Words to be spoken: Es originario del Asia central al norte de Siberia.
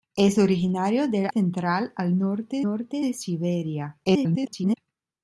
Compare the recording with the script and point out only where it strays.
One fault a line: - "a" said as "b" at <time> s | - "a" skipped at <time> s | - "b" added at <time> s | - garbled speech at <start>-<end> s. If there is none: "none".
- "Asia" skipped at 1.3 s
- "norte" added at 2.6 s
- garbled speech at 4.0-4.8 s